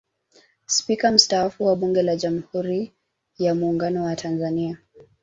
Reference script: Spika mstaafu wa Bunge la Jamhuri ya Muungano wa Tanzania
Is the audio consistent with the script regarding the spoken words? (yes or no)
yes